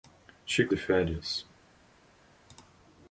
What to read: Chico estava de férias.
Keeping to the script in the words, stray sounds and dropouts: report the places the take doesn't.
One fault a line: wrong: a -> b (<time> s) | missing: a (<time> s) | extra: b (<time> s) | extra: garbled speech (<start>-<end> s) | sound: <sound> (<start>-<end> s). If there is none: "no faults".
missing: estava (0.7 s)